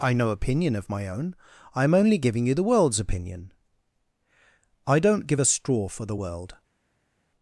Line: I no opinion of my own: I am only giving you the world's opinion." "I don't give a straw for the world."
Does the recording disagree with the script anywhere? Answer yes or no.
no